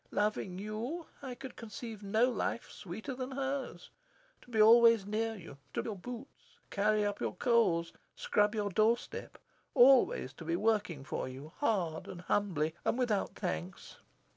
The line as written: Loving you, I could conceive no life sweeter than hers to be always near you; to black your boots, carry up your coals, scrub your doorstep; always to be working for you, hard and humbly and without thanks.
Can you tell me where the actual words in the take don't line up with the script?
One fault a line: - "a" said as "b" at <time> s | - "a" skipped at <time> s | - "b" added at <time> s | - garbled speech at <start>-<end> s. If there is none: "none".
- "black" skipped at 5.8 s